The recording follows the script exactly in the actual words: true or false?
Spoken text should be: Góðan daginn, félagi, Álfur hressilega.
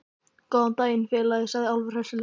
false